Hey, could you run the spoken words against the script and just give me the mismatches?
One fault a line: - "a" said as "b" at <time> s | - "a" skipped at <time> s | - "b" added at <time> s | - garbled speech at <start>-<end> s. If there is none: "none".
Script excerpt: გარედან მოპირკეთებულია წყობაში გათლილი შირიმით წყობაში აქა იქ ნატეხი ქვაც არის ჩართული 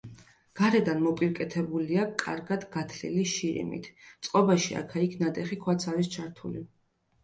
- "წყობაში" said as "კარგად" at 2.2 s